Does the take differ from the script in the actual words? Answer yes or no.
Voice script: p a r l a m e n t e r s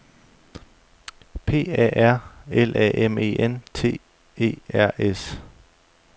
no